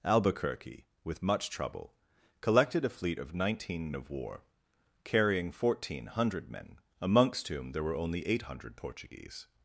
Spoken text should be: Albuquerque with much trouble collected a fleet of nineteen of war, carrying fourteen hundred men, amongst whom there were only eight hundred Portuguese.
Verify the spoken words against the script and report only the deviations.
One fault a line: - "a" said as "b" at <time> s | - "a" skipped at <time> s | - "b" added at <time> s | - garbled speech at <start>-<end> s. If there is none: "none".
none